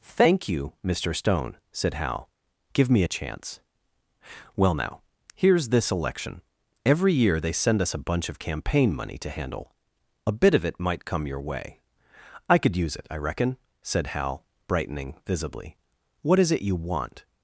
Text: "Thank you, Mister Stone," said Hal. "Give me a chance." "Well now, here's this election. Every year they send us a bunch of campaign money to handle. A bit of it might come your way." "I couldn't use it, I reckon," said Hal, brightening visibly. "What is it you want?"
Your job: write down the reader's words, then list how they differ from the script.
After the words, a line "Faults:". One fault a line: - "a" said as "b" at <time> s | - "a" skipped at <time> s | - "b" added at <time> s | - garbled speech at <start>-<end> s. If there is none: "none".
"Thank you, Mister Stone," said Hal. "Give me a chance." "Well now, here's this election. Every year they send us a bunch of campaign money to handle. A bit of it might come your way." "I could use it, I reckon," said Hal, brightening visibly. "What is it you want?"
Faults:
- "couldn't" said as "could" at 12.6 s